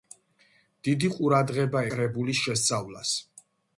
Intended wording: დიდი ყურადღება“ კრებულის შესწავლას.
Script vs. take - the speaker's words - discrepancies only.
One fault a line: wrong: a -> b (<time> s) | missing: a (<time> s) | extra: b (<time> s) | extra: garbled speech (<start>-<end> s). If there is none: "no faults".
no faults